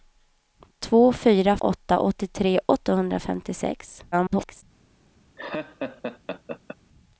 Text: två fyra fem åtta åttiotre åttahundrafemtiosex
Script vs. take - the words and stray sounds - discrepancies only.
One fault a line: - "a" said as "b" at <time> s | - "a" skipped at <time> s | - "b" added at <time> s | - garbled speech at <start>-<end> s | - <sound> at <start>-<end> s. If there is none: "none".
- "fem" skipped at 1.6 s
- garbled speech at 4.1-4.6 s
- laugh at 5.4-6.8 s